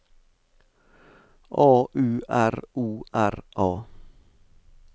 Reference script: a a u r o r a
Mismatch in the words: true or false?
true